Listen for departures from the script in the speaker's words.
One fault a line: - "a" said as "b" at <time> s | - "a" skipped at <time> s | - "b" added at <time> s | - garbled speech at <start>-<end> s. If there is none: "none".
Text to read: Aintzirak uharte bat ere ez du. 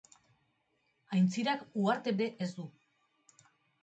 - "bat" skipped at 2.1 s